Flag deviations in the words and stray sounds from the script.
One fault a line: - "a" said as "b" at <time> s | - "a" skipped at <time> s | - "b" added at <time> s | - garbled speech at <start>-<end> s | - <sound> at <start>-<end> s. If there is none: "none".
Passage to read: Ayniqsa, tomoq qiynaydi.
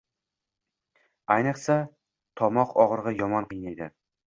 - "og‘rig‘i yomon" added at 2.9 s